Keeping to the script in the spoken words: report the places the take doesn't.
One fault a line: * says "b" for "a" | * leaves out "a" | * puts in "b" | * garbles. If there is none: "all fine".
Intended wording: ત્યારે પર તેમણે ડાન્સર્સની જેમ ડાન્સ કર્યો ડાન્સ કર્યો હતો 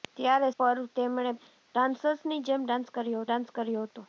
all fine